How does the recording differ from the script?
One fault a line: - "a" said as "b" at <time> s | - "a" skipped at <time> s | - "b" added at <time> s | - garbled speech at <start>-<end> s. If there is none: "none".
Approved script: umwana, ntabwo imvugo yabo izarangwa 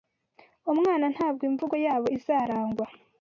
none